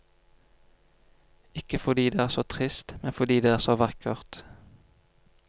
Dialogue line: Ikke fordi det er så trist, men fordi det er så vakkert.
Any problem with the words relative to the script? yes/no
no